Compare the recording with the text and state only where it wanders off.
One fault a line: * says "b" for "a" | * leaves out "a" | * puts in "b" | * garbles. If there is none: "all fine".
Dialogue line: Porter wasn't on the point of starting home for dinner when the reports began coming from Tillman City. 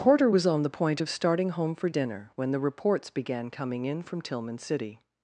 * says "was" for "wasn't"
* puts in "in"